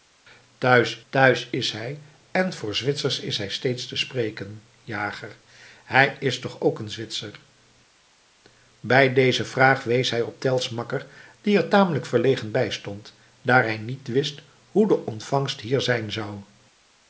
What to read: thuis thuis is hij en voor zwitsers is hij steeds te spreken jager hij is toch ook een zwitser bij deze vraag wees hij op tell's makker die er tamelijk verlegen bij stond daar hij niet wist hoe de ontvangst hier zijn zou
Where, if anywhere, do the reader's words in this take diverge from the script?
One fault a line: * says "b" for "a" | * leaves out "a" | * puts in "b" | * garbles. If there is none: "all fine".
all fine